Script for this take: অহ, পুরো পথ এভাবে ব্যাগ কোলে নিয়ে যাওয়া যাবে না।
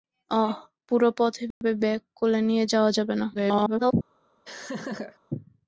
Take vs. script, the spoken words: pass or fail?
fail